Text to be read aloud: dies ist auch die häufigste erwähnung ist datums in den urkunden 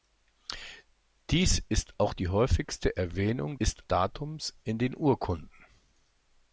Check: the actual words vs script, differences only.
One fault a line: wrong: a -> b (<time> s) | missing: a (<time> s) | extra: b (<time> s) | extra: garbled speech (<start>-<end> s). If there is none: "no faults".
no faults